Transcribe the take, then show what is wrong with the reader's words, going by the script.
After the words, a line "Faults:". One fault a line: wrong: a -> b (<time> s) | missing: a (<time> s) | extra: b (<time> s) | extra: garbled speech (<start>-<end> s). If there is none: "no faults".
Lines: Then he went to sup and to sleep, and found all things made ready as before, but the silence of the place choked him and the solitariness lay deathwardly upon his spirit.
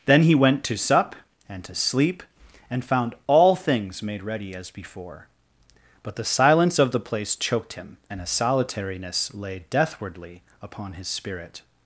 Then he went to sup and to sleep, and found all things made ready as before, but the silence of the place choked him and a solitariness lay deathwardly upon his spirit.
Faults:
wrong: the -> a (8.2 s)